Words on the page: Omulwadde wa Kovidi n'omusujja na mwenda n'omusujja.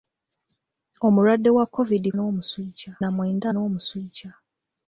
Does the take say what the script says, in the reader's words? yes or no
yes